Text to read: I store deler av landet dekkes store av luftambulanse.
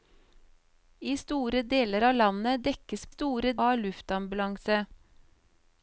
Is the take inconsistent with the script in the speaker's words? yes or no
no